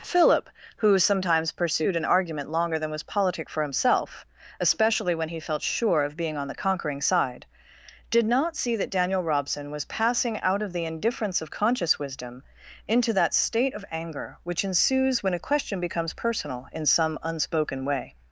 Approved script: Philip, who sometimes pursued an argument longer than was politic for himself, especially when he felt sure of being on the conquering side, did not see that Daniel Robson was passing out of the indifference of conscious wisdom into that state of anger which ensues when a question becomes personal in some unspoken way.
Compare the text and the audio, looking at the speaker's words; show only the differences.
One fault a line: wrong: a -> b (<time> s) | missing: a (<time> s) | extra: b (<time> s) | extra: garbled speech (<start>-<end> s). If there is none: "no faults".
no faults